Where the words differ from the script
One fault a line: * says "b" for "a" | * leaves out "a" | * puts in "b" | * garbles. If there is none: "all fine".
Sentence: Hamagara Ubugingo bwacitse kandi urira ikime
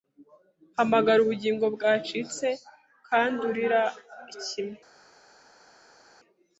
all fine